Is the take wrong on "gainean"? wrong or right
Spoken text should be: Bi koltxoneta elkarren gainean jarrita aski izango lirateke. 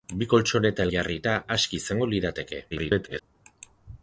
wrong